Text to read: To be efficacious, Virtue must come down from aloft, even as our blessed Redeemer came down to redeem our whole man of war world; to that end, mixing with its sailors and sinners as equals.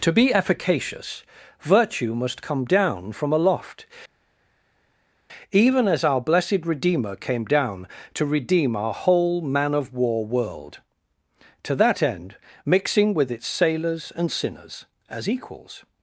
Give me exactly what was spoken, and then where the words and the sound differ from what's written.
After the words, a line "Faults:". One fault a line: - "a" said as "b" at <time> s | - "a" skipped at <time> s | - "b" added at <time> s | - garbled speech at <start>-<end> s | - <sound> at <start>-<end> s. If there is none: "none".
To be efficacious, Virtue must come down from aloft, even as our blessed Redeemer came down to redeem our whole man of war world; to that end, mixing with its sailors and sinners as equals.
Faults:
none